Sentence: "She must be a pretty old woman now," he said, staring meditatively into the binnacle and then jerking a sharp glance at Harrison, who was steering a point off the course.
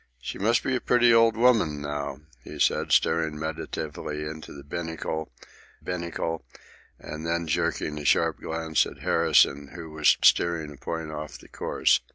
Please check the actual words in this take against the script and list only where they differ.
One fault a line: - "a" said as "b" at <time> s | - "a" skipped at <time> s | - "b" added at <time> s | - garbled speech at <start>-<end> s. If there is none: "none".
- "binnacle" added at 5.8 s